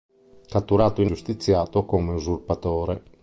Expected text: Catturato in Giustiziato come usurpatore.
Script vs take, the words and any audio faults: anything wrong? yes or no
no